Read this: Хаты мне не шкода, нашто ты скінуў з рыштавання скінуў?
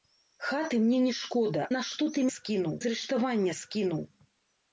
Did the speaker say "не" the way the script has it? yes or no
yes